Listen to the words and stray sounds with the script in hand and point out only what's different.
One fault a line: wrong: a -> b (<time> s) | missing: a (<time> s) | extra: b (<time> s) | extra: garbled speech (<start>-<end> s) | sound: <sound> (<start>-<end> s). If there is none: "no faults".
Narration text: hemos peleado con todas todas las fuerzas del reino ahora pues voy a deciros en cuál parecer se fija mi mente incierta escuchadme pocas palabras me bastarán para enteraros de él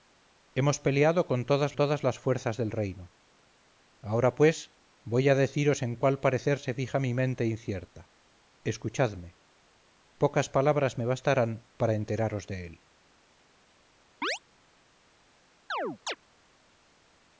sound: chirp (14.2-14.4 s)
sound: chirp (15.7-16.2 s)